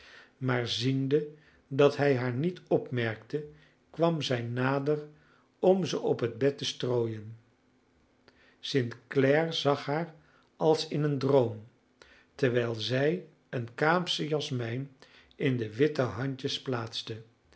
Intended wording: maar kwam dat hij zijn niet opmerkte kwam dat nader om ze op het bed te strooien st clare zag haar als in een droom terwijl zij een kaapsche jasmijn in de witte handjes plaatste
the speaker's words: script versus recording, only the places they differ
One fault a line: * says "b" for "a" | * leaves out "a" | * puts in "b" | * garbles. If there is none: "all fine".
* says "ziende" for "kwam"
* says "haar" for "zijn"
* says "zij" for "dat"